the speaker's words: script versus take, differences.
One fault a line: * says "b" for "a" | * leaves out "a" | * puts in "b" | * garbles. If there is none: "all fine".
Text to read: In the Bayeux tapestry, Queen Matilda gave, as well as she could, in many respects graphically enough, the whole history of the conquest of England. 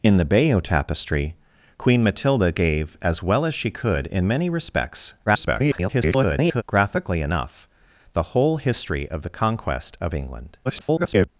* garbles
* garbles